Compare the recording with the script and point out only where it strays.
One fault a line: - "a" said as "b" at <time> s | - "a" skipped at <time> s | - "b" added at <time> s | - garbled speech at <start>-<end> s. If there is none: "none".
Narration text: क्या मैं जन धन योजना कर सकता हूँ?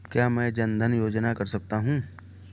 none